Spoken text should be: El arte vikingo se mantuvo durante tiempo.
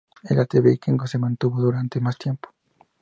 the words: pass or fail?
fail